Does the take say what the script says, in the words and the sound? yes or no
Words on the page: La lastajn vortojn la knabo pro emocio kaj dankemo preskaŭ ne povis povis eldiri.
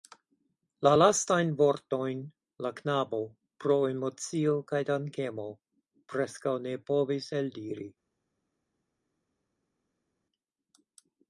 no